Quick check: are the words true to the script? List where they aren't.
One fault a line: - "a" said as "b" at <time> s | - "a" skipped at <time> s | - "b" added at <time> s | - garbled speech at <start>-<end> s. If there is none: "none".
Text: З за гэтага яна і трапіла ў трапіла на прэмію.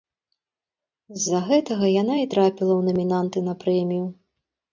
- "трапіла" said as "намінанты" at 2.9 s